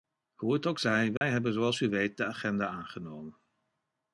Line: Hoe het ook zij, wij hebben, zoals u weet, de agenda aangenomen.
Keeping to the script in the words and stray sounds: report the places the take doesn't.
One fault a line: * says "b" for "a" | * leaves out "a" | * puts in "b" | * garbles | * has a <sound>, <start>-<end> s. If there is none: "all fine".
* has a dropout, 1.2-1.2 s